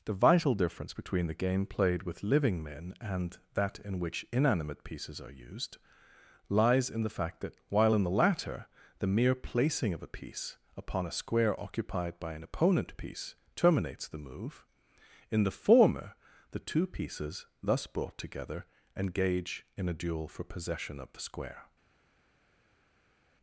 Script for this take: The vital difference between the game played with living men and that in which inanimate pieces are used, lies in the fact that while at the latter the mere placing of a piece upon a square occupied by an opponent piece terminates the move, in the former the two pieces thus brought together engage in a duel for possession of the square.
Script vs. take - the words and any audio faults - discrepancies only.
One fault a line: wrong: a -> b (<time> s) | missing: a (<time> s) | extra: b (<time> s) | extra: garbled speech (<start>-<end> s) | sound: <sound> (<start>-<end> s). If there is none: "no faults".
wrong: at -> in (7.9 s)